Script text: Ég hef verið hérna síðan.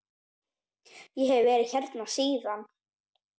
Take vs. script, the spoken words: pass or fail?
pass